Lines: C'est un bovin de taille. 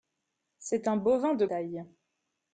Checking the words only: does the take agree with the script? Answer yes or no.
yes